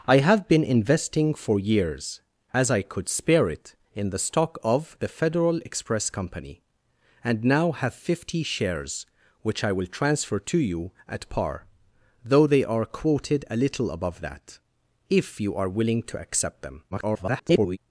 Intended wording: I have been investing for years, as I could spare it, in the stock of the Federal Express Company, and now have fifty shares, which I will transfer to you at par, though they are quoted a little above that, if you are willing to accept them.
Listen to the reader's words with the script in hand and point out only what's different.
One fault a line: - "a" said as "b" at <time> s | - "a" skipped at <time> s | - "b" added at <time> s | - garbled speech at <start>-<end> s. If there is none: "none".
- garbled speech at 16.9-17.8 s